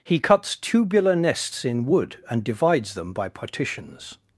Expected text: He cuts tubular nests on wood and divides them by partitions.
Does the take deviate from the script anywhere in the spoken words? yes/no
yes